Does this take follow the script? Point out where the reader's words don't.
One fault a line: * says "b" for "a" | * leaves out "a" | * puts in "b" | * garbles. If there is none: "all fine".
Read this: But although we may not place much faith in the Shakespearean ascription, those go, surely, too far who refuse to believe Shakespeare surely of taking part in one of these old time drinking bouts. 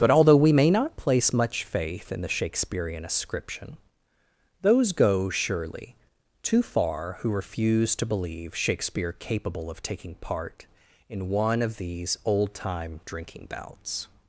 * says "capable" for "surely"